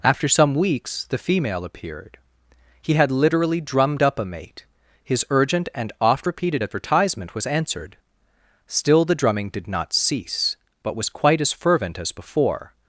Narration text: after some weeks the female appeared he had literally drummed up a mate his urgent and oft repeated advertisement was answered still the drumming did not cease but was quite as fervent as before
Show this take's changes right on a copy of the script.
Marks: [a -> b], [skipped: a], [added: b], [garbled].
after some weeks the female appeared he had literally drummed up a mate his urgent and oft repeated advertisement was answered still the drumming did not cease but was quite as fervent as before